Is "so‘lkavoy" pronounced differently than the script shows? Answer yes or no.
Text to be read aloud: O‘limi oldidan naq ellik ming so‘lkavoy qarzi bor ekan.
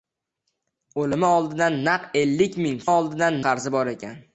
yes